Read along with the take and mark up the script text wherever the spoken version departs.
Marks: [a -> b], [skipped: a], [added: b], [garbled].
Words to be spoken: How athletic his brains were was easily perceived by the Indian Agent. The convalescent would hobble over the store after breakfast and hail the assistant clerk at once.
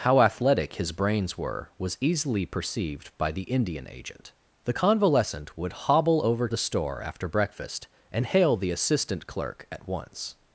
How athletic his brains were was easily perceived by the Indian Agent. The convalescent would hobble over the store after breakfast and hail the assistant clerk at once.